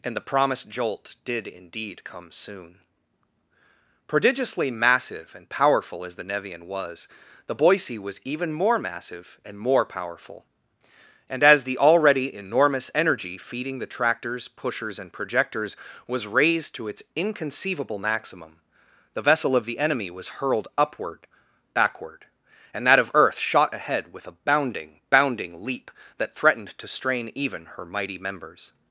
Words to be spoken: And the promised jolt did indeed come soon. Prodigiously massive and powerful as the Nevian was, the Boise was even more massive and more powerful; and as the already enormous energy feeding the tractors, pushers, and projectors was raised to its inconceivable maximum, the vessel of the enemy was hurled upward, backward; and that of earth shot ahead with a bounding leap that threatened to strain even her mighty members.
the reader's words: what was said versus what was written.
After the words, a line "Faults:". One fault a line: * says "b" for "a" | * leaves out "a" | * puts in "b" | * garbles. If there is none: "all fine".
And the promised jolt did indeed come soon. Prodigiously massive and powerful as the Nevian was, the Boise was even more massive and more powerful; and as the already enormous energy feeding the tractors, pushers, and projectors was raised to its inconceivable maximum, the vessel of the enemy was hurled upward, backward; and that of earth shot ahead with a bounding bounding leap that threatened to strain even her mighty members.
Faults:
* puts in "bounding"